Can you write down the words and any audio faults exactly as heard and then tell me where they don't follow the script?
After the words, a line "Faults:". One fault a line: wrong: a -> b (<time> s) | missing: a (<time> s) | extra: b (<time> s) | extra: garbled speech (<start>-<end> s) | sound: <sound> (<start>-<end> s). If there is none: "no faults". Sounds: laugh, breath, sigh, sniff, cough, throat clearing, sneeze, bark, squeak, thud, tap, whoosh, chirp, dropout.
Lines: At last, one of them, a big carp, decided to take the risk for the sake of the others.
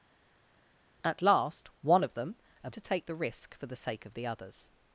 At last, one of them, a to take the risk for the sake of the others.
Faults:
missing: big carp decided (2.7 s)